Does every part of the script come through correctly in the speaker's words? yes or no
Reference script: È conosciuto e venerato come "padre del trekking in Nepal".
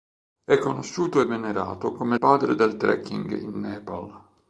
yes